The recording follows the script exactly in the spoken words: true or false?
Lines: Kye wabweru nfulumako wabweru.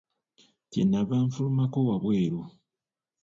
false